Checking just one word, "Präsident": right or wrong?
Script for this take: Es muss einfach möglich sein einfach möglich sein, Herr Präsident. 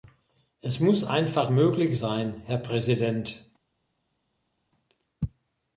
right